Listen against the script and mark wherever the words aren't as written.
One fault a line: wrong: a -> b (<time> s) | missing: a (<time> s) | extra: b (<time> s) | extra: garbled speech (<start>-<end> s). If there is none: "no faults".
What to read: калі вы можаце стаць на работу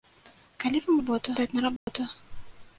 wrong: можаце -> работу (1.0 s)